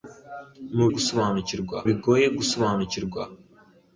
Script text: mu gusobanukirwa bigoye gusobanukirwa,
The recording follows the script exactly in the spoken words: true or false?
true